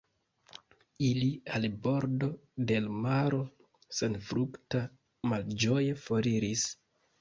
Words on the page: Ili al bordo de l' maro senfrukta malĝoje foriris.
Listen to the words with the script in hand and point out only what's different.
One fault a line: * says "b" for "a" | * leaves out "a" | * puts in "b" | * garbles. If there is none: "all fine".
all fine